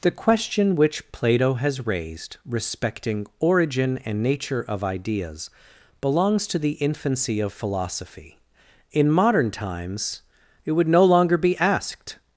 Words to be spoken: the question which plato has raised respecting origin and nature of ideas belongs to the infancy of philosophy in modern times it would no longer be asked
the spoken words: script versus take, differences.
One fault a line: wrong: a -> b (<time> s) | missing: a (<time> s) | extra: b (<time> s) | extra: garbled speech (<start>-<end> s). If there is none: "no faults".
no faults